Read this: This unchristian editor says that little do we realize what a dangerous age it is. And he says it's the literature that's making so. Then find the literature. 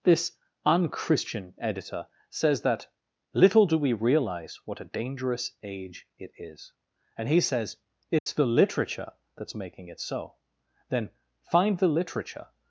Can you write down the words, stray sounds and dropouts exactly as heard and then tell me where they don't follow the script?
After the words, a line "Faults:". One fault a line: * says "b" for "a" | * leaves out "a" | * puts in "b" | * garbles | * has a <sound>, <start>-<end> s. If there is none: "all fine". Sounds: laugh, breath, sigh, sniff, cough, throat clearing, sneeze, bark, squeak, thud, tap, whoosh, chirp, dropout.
This unchristian editor says that little do we realize what a dangerous age it is. And he says it's the literature that's making it so. Then find the literature.
Faults:
* has a dropout, 8.2-8.3 s
* puts in "it"